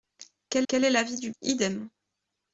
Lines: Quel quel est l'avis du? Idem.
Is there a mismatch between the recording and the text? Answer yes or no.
no